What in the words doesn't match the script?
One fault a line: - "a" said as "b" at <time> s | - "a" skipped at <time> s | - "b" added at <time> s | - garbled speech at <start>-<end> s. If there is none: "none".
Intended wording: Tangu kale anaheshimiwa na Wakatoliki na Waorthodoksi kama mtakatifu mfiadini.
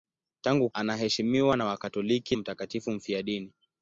- "kale" skipped at 0.7 s
- "na Waorthodoksi kama" skipped at 2.4 s